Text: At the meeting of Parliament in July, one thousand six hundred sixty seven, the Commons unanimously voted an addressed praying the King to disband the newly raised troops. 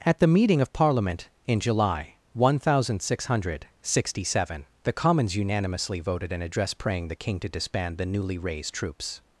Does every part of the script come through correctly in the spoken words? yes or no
no